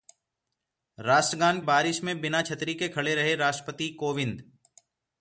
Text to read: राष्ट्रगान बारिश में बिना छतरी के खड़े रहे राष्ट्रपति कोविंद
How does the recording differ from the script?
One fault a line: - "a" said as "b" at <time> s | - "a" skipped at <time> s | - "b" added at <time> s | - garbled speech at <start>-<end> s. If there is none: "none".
none